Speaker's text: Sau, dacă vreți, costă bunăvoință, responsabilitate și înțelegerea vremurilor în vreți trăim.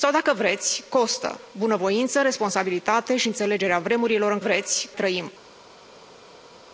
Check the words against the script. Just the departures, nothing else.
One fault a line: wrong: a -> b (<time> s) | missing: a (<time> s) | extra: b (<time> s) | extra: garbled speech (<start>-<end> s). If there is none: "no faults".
no faults